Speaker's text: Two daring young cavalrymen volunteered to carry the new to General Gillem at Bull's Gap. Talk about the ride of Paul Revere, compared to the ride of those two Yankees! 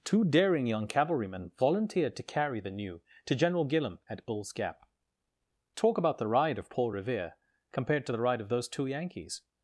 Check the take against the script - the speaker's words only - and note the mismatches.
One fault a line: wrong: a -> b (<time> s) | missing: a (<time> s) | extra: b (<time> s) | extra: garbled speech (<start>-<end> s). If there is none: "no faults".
no faults